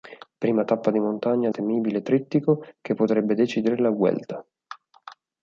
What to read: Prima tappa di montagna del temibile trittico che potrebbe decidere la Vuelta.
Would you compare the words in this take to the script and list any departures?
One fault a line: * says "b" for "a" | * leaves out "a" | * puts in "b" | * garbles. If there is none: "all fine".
* leaves out "del"